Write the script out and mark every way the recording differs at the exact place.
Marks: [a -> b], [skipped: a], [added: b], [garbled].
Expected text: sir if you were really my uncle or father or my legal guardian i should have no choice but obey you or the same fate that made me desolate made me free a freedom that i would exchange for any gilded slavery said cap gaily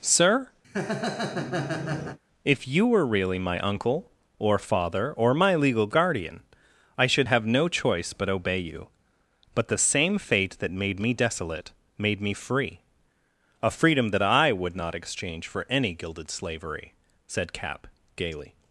sir if you were really my uncle or father or my legal guardian i should have no choice but obey you [or -> but] the same fate that made me desolate made me free a freedom that i would [added: not] exchange for any gilded slavery said cap gaily